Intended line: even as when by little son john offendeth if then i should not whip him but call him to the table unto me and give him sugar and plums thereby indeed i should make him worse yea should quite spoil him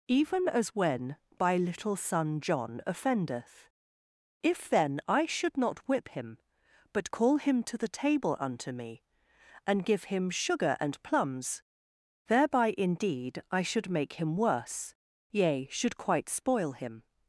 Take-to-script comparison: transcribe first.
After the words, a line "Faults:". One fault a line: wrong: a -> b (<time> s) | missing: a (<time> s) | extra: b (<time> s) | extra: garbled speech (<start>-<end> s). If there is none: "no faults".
even as when by little son john offendeth if then i should not whip him but call him to the table unto me and give him sugar and plums thereby indeed i should make him worse yea should quite spoil him
Faults:
no faults